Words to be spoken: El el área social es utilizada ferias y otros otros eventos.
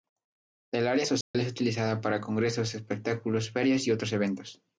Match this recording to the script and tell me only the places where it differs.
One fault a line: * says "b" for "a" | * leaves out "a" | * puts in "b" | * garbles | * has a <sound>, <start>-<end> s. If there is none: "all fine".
* leaves out "el"
* has a dropout, 1.2-1.3 s
* puts in "para congresos espectáculos"
* leaves out "otros"